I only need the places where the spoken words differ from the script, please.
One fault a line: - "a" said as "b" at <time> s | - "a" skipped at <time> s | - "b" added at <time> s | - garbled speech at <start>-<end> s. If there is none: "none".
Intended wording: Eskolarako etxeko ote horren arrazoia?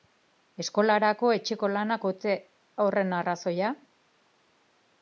- "lanak" added at 1.8 s